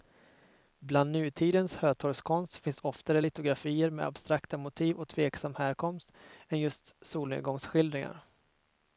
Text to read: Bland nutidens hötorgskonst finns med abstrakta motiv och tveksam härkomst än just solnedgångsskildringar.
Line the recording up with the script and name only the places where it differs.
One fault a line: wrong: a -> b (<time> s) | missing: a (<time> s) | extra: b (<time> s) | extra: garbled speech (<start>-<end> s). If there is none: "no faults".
extra: oftare litografier (2.8 s)